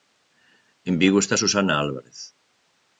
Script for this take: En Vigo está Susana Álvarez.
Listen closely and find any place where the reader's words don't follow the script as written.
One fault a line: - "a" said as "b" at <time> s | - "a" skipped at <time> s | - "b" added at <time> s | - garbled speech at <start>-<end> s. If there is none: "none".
none